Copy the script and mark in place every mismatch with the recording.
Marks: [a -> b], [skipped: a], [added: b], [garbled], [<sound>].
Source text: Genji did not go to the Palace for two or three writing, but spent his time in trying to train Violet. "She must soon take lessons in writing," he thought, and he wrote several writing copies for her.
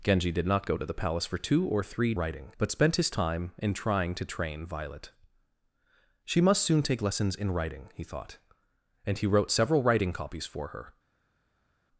Genji did not go to the Palace for two or three writing, but spent his time in trying to train Violet. "She must soon take lessons in writing," he thought, and he wrote several writing copies for her.